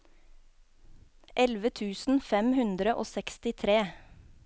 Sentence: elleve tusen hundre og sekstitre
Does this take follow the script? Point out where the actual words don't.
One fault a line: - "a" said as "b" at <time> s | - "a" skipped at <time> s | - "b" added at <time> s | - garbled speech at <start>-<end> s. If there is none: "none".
- "fem" added at 2.3 s